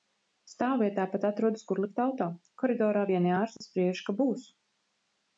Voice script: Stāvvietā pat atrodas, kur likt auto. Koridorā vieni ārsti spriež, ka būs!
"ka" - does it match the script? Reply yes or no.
yes